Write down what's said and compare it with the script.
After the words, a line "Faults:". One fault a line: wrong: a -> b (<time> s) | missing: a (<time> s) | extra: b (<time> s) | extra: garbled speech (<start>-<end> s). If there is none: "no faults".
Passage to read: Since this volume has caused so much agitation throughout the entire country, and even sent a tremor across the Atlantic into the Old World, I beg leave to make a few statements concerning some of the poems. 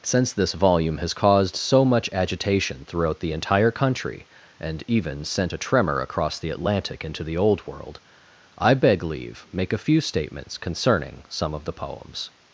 Since this volume has caused so much agitation throughout the entire country, and even sent a tremor across the Atlantic into the Old World, I beg leave make a few statements concerning some of the poems.
Faults:
missing: to (9.5 s)